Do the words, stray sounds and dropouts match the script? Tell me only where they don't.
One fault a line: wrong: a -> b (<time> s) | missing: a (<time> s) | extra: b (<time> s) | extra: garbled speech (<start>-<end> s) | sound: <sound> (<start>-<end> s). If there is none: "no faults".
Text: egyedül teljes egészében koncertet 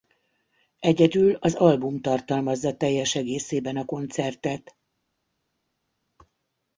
extra: az album tartalmazza (1.4 s)
extra: a (3.8 s)